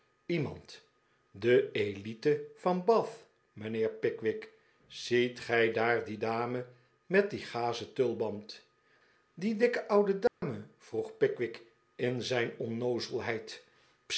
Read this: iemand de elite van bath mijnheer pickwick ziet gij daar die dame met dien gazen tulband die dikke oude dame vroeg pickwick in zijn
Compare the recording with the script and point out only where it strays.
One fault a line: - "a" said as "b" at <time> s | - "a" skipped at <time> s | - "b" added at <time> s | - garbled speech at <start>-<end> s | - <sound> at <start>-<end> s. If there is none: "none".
- dropout at 10.3-10.4 s